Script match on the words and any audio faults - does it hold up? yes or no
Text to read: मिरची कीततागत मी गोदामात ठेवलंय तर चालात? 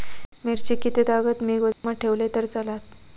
no